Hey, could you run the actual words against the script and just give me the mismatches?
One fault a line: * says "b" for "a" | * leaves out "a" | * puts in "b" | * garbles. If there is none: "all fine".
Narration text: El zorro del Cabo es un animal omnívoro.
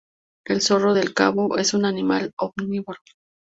all fine